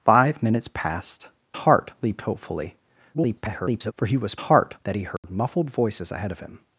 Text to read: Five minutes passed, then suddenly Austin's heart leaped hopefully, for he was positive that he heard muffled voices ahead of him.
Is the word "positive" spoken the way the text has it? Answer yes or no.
no